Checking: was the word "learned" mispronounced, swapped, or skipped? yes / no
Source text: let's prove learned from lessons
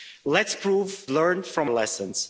no